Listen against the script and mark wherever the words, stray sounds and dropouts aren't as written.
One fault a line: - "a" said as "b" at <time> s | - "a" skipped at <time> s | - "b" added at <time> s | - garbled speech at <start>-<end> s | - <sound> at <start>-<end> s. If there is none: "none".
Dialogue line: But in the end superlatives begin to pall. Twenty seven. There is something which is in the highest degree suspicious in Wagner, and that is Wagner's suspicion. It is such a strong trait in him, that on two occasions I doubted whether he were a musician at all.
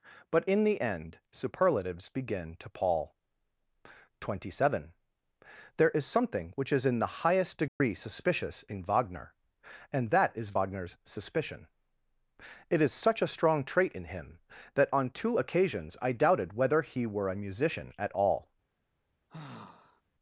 - dropout at 7.7-7.8 s
- sigh at 19.3-20.0 s